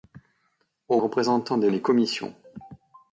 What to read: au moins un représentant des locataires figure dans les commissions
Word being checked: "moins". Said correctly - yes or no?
no